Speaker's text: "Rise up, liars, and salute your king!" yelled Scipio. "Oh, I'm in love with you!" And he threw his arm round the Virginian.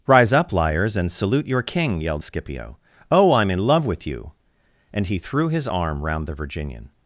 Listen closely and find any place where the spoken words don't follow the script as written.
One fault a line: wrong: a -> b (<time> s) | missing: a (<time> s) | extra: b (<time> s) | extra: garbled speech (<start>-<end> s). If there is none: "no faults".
no faults